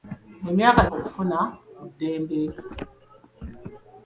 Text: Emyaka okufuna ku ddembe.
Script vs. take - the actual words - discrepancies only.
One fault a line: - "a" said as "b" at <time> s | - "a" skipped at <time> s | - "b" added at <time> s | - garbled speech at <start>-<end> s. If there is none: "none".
none